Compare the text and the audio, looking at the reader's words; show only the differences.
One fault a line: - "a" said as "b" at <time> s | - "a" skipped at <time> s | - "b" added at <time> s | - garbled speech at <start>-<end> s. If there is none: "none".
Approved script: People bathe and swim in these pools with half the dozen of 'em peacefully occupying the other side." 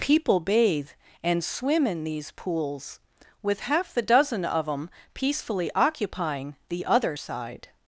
none